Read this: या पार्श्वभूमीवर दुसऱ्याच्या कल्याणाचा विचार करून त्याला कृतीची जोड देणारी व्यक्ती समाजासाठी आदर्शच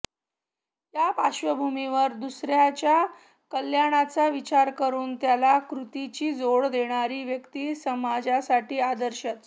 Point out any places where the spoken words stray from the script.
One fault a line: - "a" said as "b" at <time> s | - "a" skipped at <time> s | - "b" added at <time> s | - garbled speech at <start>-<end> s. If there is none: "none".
none